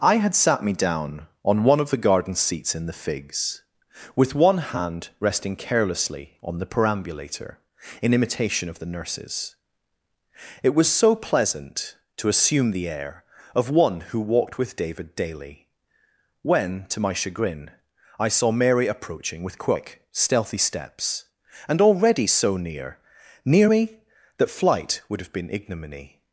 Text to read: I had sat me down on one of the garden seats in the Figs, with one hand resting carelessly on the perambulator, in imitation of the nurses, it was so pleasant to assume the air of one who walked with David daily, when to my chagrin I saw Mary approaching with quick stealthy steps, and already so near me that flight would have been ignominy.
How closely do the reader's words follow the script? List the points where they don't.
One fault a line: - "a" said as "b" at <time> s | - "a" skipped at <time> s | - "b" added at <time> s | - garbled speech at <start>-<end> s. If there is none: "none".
- "near" added at 23.4 s